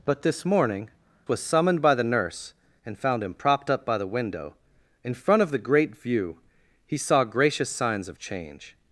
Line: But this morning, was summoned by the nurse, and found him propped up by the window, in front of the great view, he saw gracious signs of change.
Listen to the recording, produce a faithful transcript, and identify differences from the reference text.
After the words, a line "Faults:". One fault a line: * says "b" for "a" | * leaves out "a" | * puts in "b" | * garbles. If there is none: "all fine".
But this morning, was summoned by the nurse, and found him propped up by the window, in front of the great view, he saw gracious signs of change.
Faults:
all fine